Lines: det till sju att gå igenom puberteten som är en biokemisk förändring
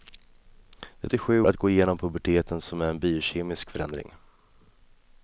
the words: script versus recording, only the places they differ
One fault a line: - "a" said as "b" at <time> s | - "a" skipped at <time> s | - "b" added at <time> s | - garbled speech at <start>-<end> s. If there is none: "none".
none